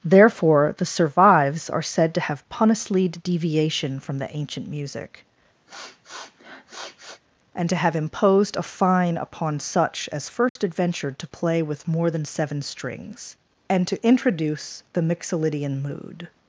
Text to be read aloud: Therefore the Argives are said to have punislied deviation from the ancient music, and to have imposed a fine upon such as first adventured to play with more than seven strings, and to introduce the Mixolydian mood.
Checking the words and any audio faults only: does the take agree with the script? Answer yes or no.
no